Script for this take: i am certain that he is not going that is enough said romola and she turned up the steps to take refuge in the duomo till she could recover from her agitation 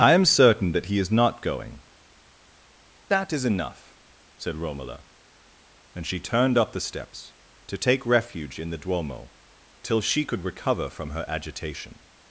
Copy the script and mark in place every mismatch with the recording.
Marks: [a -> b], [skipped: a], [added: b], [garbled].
i am certain that he is not going that is enough said romola and she turned up the steps to take refuge in the duomo till she could recover from her agitation